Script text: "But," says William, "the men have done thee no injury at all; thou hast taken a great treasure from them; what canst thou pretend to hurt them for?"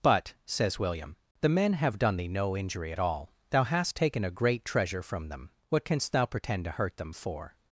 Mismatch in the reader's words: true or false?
false